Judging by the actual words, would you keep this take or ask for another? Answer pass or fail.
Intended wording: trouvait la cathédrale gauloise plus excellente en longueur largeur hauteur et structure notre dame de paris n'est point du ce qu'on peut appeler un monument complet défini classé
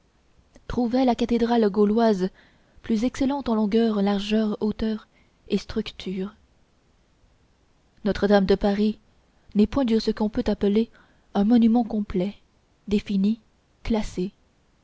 pass